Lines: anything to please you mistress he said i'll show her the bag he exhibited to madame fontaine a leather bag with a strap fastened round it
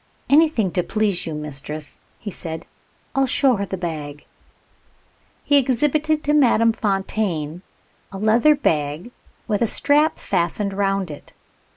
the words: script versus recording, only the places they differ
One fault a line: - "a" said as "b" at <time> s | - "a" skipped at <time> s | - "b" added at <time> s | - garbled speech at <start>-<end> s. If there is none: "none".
none